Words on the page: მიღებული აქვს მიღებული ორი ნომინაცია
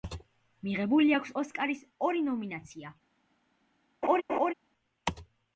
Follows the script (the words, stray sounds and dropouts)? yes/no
no